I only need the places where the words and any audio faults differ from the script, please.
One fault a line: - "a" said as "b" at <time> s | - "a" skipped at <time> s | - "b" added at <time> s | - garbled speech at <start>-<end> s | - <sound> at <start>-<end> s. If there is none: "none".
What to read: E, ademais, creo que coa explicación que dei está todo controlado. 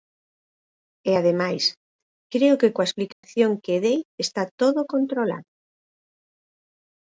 - dropout at 3.1-3.2 s